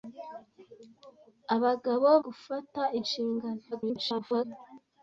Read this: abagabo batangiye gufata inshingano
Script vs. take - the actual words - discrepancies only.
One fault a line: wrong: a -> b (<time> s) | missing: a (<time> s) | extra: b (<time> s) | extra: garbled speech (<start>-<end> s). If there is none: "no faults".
missing: batangiye (2.1 s)
extra: garbled speech (3.7-4.4 s)